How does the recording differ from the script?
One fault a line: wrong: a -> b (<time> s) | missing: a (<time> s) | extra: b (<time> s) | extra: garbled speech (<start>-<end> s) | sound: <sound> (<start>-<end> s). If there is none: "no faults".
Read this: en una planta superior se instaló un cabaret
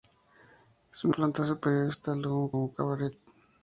missing: una (1.1 s)
extra: un (2.6 s)